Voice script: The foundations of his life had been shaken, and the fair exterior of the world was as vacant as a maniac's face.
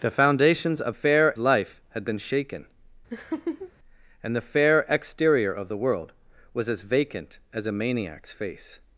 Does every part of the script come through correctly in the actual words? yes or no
no